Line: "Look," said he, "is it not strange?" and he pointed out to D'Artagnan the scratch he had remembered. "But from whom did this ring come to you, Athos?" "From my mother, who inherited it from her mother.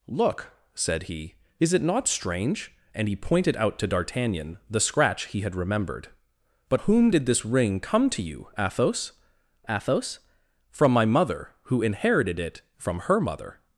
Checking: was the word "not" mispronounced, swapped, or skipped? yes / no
no